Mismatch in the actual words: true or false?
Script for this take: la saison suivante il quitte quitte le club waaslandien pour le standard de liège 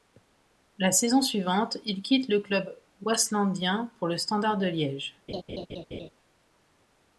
true